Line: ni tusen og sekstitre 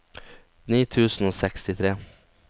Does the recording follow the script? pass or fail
pass